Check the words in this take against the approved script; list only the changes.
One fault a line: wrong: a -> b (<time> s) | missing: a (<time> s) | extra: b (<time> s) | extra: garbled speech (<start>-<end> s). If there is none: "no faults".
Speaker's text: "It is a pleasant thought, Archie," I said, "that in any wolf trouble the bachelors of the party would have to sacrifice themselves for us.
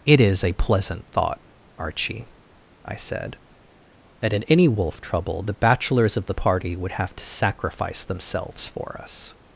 no faults